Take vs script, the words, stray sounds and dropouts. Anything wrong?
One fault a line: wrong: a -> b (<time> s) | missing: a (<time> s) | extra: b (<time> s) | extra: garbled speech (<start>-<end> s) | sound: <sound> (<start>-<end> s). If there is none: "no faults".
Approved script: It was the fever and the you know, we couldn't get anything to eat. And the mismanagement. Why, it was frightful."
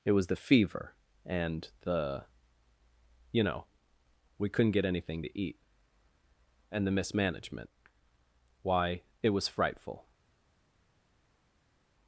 no faults